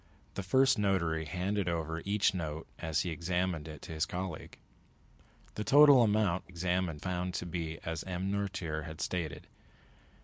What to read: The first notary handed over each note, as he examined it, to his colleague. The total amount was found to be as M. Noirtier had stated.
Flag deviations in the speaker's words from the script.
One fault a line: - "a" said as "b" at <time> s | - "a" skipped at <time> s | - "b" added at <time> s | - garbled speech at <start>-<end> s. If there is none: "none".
- "was" said as "examined" at 6.5 s